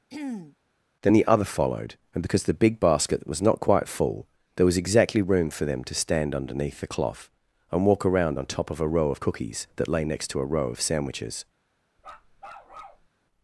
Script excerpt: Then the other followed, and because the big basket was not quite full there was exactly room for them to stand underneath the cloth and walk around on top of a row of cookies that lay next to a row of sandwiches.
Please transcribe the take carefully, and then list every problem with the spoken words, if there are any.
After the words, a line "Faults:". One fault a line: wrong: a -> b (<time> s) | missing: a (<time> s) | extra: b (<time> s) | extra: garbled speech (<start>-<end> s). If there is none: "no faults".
Then the other followed, and because the big basket was not quite full there was exactly room for them to stand underneath the cloth and walk around on top of a row of cookies that lay next to a row of sandwiches.
Faults:
no faults